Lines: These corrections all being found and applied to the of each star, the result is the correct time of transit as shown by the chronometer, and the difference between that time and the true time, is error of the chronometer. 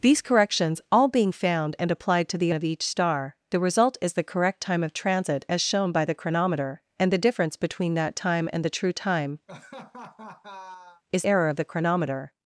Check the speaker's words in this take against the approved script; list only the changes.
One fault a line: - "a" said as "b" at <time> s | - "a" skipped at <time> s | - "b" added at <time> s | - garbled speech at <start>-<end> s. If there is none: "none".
none